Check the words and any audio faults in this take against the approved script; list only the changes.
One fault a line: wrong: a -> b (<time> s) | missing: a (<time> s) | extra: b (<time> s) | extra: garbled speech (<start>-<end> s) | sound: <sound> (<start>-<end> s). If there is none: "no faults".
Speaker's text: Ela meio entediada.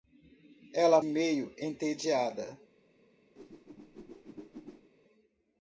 sound: whoosh (3.4-4.9 s)